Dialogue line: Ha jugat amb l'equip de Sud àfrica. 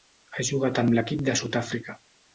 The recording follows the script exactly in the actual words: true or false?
true